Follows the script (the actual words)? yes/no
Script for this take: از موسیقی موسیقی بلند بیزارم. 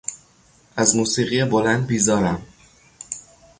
no